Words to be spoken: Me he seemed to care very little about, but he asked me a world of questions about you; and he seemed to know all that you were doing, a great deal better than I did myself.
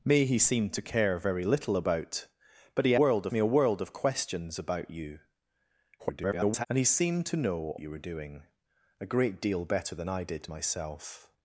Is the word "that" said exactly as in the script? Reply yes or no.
no